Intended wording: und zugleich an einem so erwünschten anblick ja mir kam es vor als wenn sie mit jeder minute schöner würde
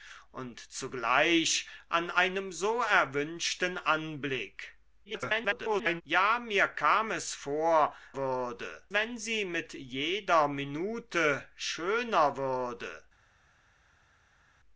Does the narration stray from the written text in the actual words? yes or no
yes